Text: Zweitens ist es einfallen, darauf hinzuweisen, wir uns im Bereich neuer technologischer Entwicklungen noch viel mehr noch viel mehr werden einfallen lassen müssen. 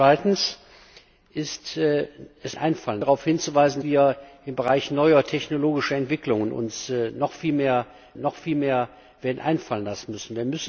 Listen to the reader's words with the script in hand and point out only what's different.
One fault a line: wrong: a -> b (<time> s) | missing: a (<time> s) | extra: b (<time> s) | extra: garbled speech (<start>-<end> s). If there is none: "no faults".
no faults